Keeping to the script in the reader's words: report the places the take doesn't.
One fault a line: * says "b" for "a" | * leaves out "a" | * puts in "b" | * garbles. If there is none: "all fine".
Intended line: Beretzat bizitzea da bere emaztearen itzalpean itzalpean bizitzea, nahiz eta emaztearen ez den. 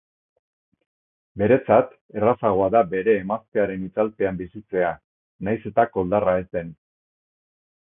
* says "errazagoa" for "bizitzea"
* leaves out "itzalpean"
* says "koldarra" for "emaztearen"